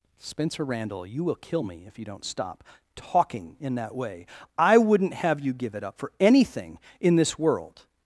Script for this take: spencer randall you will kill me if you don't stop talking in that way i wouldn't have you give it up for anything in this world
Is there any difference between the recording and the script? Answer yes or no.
no